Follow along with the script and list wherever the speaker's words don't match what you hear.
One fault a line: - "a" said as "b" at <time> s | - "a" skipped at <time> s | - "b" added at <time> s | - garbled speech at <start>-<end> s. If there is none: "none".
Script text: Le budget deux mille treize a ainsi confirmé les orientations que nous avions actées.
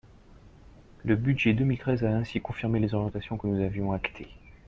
none